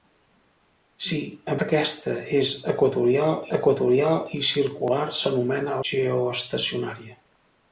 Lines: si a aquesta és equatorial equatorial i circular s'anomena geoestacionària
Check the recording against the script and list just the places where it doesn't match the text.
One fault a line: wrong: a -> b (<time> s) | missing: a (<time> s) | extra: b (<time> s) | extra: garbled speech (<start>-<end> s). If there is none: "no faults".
no faults